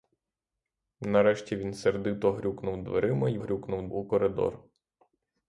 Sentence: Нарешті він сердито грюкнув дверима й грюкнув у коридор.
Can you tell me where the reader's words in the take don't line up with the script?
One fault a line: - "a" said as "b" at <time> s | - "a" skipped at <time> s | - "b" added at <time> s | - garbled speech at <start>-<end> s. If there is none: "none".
none